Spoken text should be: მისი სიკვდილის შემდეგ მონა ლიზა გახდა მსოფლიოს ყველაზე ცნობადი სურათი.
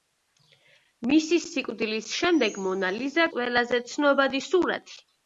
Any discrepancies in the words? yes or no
yes